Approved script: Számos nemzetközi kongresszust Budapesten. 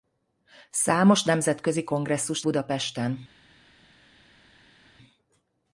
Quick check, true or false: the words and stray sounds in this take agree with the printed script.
true